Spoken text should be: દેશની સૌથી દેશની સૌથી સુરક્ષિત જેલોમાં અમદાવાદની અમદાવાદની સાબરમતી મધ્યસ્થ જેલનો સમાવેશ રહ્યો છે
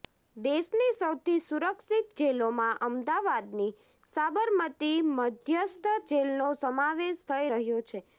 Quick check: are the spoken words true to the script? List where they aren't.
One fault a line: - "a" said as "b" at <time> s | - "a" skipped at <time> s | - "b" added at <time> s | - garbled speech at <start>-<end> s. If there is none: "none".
- "દેશની સૌથી" skipped at 1.4 s
- "અમદાવાદની" skipped at 3.7 s
- "થઈ" added at 7.3 s